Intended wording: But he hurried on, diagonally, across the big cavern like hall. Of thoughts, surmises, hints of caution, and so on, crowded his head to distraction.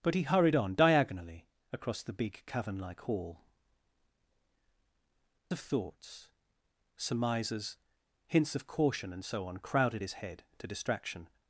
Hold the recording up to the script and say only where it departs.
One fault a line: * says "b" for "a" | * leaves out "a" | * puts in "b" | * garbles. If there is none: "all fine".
all fine